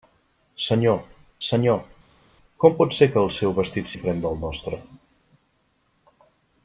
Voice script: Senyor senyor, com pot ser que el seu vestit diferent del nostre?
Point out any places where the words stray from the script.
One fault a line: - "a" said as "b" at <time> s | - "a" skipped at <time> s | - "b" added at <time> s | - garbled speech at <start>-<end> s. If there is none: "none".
none